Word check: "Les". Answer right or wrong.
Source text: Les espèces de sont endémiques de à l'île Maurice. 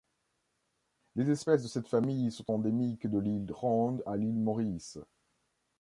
right